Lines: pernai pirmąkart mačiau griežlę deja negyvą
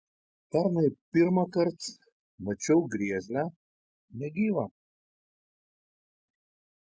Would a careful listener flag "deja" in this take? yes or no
yes